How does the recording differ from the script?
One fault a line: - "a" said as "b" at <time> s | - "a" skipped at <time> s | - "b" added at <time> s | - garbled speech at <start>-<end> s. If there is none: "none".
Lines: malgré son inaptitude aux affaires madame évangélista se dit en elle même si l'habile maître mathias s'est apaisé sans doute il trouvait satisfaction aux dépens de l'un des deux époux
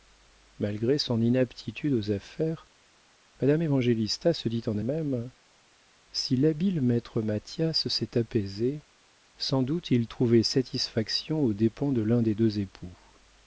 - "elle" skipped at 4.8 s